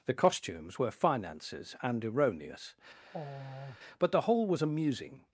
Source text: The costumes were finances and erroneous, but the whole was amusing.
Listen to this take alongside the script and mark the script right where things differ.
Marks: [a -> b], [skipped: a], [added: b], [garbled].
The costumes were finances and erroneous, but the whole was amusing.